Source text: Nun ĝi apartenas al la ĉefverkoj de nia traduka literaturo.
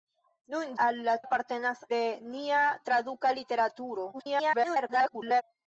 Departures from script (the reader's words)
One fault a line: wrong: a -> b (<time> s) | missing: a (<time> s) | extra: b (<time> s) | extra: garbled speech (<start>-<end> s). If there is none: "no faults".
missing: ĝi apartenas (0.7 s)
wrong: ĉefverkoj -> apartenas (1.2 s)
extra: garbled speech (4.1-5.4 s)